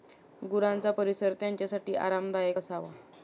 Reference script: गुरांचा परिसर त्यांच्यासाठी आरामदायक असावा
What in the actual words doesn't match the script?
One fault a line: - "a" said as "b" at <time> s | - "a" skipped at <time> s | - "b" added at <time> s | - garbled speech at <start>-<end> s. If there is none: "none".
none